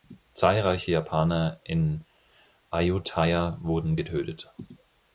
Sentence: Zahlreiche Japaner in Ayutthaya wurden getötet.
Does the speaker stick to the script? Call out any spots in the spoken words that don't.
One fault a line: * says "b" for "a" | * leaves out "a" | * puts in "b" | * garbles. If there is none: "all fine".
all fine